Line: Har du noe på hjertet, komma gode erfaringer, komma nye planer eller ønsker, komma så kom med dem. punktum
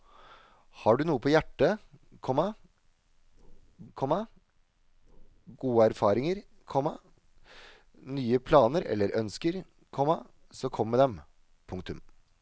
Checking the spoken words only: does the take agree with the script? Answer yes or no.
no